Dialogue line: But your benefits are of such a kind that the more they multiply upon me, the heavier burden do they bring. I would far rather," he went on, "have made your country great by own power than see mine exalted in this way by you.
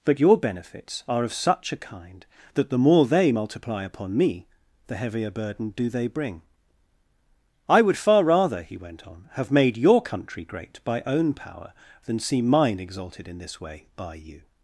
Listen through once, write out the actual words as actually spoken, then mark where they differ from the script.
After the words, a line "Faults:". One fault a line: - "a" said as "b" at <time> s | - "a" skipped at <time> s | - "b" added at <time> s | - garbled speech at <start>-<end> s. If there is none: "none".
But your benefits are of such a kind that the more they multiply upon me, the heavier burden do they bring. I would far rather," he went on, "have made your country great by own power than see mine exalted in this way by you.
Faults:
none